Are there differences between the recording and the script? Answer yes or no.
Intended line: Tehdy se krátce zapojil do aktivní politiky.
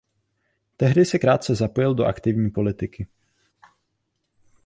no